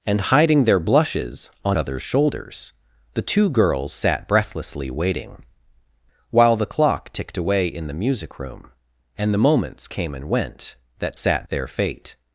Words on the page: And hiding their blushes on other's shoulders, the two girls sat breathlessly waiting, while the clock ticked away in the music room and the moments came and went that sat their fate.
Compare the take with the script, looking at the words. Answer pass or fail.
pass